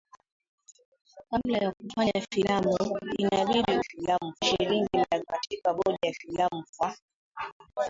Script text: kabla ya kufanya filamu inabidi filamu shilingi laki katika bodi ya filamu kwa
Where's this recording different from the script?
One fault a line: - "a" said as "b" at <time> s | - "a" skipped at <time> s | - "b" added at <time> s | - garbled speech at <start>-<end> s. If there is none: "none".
none